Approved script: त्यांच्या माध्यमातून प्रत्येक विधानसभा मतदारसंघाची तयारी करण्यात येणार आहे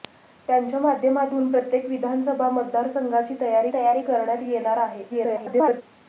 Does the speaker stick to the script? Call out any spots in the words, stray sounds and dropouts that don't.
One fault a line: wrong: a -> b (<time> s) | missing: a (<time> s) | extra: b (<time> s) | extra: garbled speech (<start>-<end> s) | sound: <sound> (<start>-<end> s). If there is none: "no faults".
extra: तयारी (3.7 s)
extra: garbled speech (5.1-5.8 s)